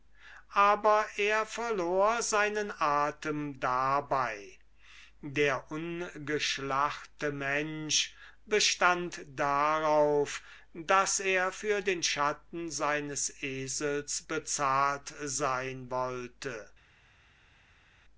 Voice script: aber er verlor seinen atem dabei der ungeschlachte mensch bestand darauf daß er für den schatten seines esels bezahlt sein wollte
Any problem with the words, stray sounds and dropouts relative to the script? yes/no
no